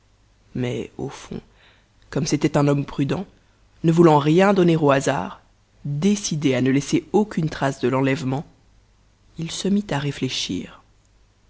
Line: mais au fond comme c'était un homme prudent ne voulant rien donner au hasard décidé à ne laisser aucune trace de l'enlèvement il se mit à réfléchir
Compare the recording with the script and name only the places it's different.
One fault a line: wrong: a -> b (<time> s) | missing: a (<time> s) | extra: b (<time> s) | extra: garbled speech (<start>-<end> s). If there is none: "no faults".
no faults